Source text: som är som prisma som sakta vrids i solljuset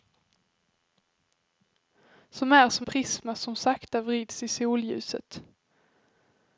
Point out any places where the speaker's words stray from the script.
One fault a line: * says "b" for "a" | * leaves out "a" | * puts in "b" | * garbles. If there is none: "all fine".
all fine